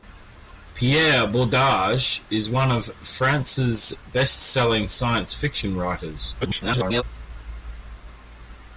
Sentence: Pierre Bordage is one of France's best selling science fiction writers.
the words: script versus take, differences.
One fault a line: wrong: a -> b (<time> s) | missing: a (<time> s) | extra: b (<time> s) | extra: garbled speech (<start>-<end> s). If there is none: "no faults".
extra: garbled speech (6.4-7.0 s)